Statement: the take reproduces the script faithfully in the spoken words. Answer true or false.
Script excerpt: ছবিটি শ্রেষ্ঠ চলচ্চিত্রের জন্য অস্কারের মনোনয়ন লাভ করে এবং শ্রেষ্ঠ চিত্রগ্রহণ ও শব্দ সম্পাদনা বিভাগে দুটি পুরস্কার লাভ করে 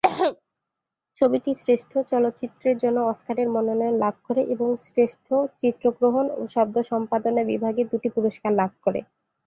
true